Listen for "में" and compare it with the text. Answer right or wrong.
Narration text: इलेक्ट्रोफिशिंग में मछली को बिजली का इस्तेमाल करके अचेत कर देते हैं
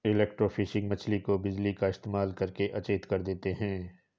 wrong